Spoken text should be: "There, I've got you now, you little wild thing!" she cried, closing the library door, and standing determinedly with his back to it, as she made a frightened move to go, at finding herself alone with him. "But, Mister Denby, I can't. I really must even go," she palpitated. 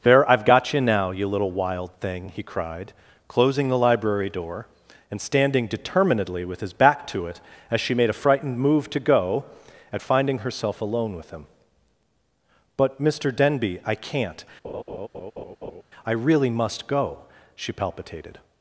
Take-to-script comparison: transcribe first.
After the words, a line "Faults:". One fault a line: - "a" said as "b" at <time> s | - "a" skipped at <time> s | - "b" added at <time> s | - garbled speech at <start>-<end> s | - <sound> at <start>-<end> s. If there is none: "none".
"There, I've got you now, you little wild thing!" he cried, closing the library door, and standing determinedly with his back to it, as she made a frightened move to go, at finding herself alone with him. "But, Mister Denby, I can't. I really must go," she palpitated.
Faults:
- "she" said as "he" at 2.3 s
- laugh at 14.6-15.8 s
- "even" skipped at 16.9 s